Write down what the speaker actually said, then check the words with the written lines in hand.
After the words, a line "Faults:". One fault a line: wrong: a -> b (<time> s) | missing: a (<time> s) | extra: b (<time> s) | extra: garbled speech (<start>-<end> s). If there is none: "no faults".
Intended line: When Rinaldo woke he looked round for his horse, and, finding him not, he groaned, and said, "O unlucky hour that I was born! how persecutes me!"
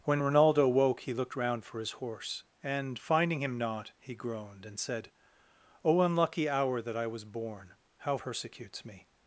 When Rinaldo woke he looked round for his horse, and, finding him not, he groaned, and said, "O unlucky hour that I was born! how persecutes me!"
Faults:
no faults